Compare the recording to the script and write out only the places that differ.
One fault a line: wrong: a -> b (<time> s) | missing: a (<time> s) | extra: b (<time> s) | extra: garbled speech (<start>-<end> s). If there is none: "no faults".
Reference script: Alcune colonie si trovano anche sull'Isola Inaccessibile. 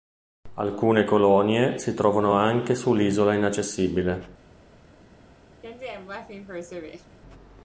no faults